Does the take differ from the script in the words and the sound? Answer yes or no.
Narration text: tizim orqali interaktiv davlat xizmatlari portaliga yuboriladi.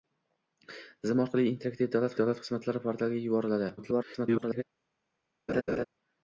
yes